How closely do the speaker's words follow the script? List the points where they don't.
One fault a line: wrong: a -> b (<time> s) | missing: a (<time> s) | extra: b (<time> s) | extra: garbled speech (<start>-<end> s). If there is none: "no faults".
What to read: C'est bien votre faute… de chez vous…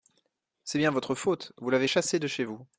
extra: vous l'avez chassé (1.6 s)